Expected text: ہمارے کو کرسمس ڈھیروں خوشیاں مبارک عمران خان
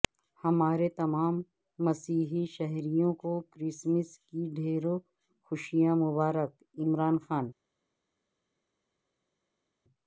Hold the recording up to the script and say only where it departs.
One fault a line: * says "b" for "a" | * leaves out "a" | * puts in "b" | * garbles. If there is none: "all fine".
* puts in "تمام مسیحی شہریوں"
* puts in "کی"